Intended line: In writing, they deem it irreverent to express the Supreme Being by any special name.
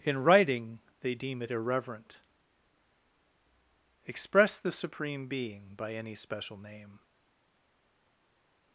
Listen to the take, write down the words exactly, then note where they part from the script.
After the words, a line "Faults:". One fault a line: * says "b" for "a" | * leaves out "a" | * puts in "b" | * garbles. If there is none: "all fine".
In writing, they deem it irreverent express the Supreme Being by any special name.
Faults:
* leaves out "to"